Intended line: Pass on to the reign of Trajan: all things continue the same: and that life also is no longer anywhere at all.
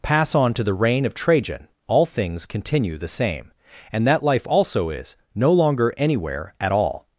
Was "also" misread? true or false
false